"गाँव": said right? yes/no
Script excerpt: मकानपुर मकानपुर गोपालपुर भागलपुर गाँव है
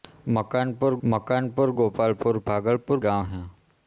yes